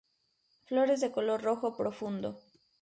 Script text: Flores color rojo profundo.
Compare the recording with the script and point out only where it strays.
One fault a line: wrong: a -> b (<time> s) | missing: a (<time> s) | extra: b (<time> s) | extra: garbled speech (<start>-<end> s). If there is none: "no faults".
extra: de (1.0 s)